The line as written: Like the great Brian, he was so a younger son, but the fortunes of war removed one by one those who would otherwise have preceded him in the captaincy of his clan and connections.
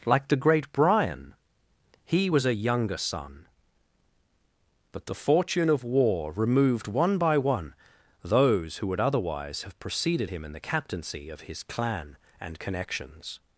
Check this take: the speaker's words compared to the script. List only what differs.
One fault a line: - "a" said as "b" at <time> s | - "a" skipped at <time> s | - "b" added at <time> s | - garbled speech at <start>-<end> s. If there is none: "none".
- "so" skipped at 2.4 s
- "fortunes" said as "fortune" at 5.1 s